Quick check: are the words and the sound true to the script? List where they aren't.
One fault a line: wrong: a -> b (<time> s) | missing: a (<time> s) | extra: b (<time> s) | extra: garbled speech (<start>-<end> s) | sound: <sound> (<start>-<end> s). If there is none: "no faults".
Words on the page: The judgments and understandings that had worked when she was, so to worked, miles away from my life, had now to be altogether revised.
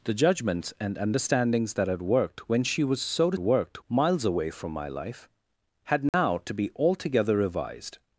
sound: dropout (6.1-6.1 s)